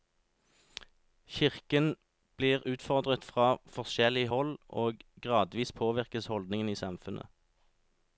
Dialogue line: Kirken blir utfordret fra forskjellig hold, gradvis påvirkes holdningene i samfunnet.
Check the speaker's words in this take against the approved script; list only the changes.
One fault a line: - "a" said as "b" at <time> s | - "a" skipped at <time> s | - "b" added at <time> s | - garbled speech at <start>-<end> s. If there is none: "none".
- "og" added at 4.7 s